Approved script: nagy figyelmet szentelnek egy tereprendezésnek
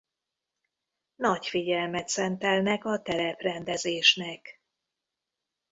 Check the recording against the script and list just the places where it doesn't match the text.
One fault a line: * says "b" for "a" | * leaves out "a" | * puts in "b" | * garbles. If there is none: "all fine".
* says "a" for "egy"